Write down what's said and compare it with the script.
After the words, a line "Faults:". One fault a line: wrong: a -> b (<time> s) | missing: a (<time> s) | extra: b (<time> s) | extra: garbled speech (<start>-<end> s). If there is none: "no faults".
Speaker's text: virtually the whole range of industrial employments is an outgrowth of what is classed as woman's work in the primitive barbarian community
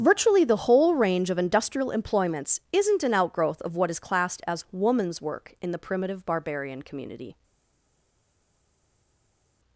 virtually the whole range of industrial employments isn't an outgrowth of what is classed as woman's work in the primitive barbarian community
Faults:
wrong: is -> isn't (2.7 s)